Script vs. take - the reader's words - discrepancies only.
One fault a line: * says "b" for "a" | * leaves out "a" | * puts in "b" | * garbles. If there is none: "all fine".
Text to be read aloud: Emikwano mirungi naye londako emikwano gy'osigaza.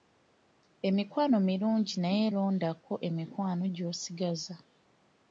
all fine